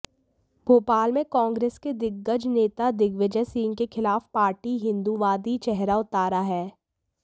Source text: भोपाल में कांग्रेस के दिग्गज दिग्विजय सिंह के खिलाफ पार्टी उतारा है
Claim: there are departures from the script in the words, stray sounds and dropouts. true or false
true